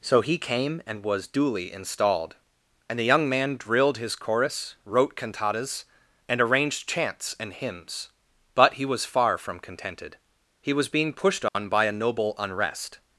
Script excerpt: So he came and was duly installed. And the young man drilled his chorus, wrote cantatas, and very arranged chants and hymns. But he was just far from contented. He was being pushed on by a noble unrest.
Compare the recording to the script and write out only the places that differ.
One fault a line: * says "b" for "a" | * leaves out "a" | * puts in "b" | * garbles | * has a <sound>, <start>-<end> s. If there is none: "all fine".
* leaves out "very"
* leaves out "just"
* has a dropout, 11.5-11.5 s